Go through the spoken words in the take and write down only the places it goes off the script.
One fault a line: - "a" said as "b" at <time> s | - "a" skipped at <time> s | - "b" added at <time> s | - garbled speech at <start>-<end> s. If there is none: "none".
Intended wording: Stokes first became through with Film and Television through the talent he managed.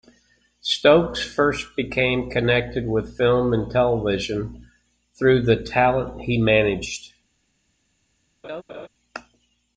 - "through" said as "connected" at 2.3 s